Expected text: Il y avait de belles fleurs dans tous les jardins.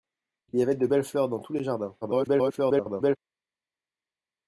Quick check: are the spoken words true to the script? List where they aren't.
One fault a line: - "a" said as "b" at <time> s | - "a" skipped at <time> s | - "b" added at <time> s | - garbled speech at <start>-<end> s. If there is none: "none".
- garbled speech at 2.0-3.2 s